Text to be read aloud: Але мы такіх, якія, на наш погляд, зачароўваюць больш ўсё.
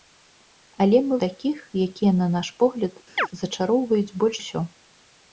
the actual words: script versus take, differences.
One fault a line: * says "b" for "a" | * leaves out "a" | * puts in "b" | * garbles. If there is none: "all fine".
all fine